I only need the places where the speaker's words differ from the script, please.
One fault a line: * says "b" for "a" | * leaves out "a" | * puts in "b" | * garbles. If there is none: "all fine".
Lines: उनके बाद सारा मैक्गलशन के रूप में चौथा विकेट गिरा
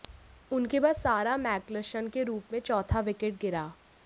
all fine